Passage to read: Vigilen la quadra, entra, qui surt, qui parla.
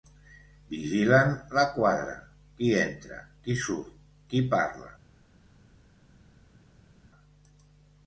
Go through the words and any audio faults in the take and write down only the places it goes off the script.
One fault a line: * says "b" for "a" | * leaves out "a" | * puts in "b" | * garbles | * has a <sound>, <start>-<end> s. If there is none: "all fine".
* puts in "qui"